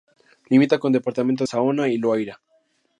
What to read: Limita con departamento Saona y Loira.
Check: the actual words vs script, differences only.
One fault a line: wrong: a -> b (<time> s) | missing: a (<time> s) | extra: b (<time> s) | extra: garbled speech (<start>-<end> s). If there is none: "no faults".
no faults